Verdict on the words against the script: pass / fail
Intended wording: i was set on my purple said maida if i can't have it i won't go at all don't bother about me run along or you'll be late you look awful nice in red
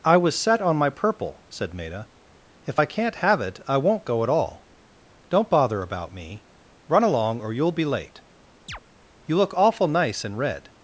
pass